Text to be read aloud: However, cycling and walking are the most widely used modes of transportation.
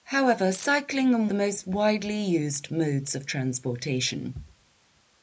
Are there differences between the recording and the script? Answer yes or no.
yes